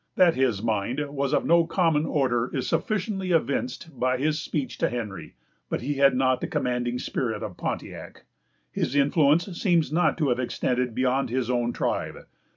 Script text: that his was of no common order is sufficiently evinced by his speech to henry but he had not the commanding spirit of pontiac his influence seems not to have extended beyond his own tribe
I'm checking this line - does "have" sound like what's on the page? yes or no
yes